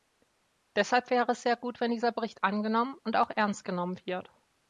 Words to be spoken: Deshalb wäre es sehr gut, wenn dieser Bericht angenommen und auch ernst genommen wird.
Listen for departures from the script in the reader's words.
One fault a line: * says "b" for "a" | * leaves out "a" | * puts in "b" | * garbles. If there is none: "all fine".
all fine